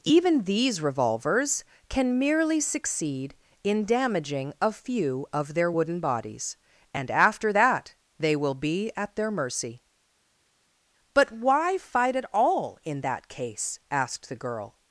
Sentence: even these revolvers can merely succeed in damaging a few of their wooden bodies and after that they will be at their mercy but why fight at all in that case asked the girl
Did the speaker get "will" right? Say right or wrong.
right